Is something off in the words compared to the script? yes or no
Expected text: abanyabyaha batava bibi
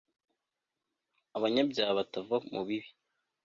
yes